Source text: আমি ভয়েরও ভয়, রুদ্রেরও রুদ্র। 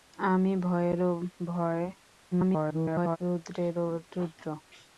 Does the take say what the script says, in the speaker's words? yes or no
no